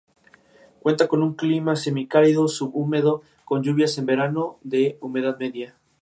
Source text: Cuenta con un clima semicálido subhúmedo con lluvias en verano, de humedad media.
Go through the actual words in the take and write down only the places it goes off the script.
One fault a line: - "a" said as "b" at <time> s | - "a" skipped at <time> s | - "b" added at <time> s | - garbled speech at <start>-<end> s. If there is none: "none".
none